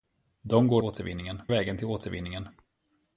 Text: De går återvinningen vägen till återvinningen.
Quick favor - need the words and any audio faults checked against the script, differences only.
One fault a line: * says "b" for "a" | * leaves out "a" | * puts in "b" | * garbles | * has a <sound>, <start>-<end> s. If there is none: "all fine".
all fine